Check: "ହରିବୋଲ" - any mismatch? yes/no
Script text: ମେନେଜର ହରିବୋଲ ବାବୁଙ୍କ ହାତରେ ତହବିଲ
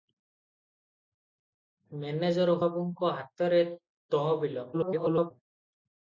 yes